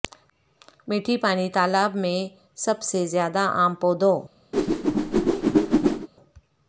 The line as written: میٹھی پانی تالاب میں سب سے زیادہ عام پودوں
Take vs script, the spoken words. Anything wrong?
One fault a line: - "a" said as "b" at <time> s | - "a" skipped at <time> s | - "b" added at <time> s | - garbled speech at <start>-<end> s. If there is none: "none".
none